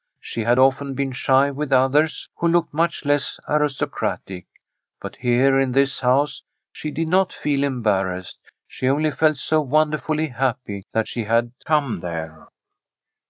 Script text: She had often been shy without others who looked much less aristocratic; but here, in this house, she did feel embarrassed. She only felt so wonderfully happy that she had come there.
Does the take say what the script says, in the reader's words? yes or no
no